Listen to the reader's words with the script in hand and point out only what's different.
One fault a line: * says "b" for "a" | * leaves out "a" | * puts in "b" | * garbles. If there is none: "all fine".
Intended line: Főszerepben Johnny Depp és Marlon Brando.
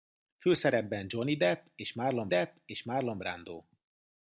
* puts in "Depp és Marlon"